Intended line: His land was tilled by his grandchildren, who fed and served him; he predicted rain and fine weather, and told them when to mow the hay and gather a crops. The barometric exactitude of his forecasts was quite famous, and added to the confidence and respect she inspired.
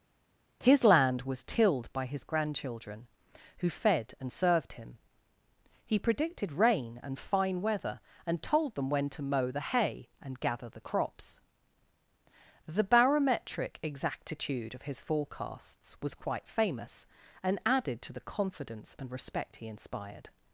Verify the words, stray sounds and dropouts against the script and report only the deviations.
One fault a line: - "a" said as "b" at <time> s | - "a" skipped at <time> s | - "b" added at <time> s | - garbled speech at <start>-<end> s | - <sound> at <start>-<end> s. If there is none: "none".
- "a" said as "the" at 10.7 s
- "she" said as "he" at 19.6 s